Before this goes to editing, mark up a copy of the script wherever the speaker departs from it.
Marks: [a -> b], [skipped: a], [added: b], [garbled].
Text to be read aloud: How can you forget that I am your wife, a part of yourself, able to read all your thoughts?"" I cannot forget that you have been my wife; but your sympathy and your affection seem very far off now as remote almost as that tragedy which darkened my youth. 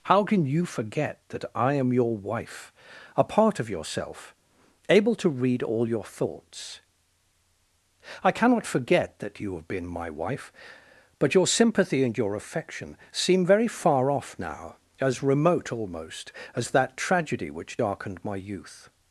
How can you forget that I am your wife, a part of yourself, able to read all your thoughts?"" I cannot forget that you have been my wife; but your sympathy and your affection seem very far off now as remote almost as that tragedy which darkened my youth.